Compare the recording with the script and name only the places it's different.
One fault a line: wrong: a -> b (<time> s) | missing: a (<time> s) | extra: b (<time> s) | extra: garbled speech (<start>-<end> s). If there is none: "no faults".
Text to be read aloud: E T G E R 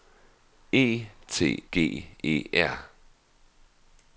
no faults